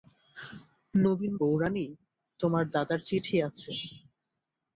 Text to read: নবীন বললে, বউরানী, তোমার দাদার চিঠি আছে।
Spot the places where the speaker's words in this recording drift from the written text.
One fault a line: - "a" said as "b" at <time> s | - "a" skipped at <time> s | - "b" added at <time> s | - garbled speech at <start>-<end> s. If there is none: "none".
- "বললে" skipped at 1.3 s